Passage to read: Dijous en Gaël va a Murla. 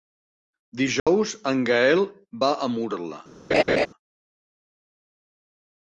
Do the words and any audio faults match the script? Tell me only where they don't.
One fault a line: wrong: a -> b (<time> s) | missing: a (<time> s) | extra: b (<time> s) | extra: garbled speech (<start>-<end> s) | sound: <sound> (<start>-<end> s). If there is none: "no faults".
sound: dropout (1.0-1.1 s)
sound: laugh (3.5-3.9 s)